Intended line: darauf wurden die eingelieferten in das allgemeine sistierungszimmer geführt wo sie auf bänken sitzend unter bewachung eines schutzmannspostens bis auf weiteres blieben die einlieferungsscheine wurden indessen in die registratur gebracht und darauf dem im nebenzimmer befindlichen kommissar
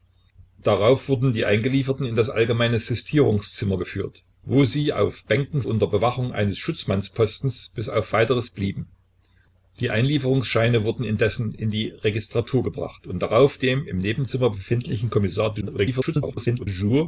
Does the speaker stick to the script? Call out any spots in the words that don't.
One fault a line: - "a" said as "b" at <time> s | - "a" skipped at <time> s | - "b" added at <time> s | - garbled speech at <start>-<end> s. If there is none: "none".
- "sitzend" skipped at 5.6 s
- garbled speech at 15.6-16.7 s